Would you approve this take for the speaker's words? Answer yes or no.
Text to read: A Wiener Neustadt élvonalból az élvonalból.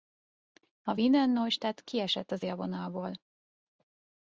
no